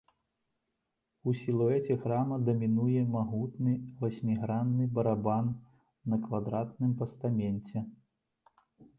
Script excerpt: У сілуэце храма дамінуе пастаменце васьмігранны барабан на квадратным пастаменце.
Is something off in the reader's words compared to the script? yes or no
yes